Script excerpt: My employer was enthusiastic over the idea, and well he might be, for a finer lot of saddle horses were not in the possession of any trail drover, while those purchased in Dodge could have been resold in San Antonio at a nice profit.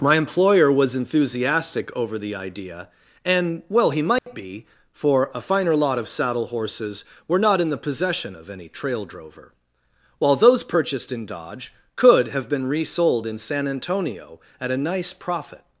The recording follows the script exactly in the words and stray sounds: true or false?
false